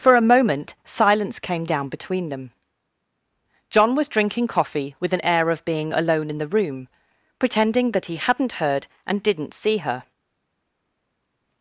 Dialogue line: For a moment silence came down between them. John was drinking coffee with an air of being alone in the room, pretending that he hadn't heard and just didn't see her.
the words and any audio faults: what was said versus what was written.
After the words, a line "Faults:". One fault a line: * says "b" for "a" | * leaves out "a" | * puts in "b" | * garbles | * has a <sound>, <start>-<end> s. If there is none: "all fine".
For a moment silence came down between them. John was drinking coffee with an air of being alone in the room, pretending that he hadn't heard and didn't see her.
Faults:
* leaves out "just"